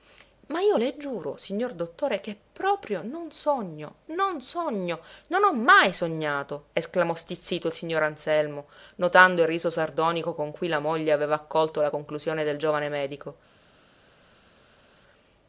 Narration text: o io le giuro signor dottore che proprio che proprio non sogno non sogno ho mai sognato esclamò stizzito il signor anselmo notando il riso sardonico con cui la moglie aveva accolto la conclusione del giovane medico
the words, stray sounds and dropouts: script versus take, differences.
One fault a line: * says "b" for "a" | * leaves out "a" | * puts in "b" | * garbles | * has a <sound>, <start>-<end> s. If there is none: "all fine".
* says "ma" for "o"
* says "non sogno" for "che proprio"
* leaves out "sogno"